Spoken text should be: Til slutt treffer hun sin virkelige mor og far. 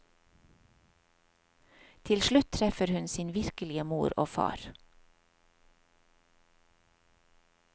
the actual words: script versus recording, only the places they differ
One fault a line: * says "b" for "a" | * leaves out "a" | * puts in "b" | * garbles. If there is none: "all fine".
all fine